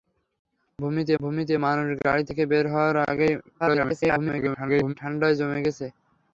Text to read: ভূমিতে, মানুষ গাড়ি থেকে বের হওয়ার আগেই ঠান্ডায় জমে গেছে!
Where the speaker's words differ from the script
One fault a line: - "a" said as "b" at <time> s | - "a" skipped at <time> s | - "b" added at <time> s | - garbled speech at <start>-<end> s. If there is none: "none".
- "ভূমিতে" added at 1.2 s
- garbled speech at 3.6-4.9 s